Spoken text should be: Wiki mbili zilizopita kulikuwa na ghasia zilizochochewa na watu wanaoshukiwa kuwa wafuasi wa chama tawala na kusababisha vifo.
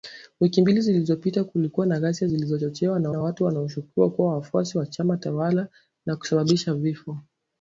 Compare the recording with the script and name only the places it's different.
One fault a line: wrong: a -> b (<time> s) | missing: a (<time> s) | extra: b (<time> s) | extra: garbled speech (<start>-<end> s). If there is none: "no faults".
extra: na (3.1 s)